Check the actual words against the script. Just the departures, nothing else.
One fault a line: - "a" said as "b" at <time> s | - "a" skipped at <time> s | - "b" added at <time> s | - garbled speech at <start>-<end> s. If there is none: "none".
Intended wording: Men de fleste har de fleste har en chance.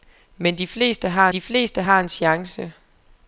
none